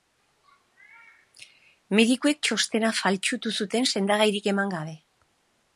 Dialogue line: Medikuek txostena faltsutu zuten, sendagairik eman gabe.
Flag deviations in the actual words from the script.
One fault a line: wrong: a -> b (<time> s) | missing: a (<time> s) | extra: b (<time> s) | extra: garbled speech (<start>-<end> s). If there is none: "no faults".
no faults